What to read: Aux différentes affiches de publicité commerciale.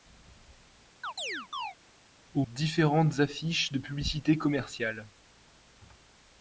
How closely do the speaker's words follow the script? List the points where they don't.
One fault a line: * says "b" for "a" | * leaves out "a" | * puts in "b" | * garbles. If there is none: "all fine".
all fine